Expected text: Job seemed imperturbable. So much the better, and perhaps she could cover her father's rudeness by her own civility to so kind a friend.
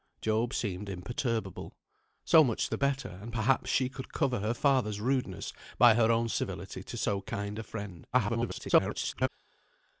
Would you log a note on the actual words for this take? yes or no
yes